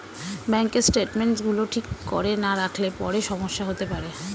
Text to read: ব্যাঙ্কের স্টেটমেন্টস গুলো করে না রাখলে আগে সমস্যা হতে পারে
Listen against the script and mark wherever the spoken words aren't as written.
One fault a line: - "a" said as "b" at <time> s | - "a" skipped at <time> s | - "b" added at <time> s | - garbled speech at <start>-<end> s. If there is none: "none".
- "ঠিক" added at 1.7 s
- "আগে" said as "পরে" at 3.0 s